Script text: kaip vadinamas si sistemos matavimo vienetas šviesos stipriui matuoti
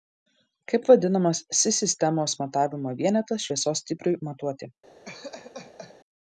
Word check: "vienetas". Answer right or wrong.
right